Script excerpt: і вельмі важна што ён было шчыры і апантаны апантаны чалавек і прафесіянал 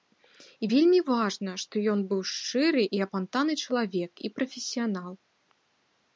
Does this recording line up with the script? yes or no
no